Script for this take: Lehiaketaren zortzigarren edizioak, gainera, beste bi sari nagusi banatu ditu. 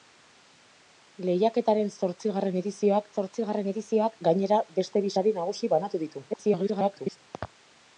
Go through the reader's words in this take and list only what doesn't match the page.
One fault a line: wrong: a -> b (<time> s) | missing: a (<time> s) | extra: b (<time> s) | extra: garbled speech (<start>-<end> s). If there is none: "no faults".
extra: zortzigarren edizioak (3.1 s)
extra: garbled speech (6.3-7.2 s)